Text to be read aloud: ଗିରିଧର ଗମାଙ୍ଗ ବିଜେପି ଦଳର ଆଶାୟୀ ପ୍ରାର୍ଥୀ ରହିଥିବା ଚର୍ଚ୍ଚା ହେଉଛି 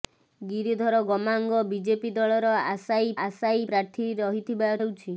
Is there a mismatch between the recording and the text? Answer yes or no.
yes